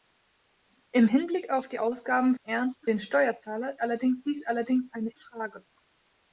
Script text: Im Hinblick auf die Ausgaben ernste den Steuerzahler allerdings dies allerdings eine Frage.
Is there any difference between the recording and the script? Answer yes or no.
no